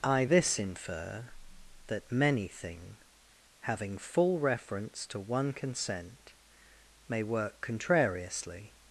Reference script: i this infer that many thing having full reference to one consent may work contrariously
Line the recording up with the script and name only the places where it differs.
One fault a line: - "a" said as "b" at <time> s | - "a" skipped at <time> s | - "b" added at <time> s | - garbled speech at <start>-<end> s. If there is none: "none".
none